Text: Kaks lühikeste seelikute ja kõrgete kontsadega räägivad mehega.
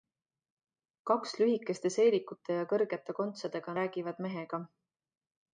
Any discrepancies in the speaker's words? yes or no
no